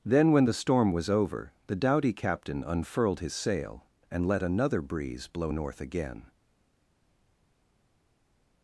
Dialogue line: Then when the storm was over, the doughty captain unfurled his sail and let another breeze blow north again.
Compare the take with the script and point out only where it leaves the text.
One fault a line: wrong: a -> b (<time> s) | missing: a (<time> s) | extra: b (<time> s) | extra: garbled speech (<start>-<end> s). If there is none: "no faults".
no faults